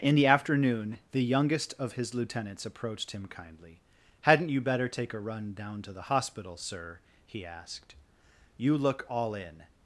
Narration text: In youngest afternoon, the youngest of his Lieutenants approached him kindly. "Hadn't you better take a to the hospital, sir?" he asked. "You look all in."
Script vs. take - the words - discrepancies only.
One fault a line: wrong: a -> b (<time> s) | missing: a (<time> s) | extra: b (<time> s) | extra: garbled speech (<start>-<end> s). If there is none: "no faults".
wrong: youngest -> the (0.1 s)
extra: run down (5.2 s)